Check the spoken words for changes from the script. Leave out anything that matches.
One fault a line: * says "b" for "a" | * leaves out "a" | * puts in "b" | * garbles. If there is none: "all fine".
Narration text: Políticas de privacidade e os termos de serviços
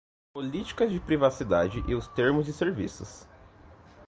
all fine